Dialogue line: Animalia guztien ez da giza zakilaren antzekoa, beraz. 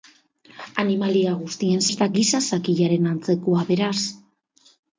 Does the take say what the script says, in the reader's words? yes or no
yes